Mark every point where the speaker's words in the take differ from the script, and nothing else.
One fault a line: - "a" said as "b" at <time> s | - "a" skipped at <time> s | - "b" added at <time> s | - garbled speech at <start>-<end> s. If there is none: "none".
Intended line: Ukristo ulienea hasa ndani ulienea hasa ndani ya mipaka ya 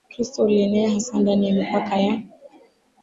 - "ulienea hasa ndani" skipped at 1.5 s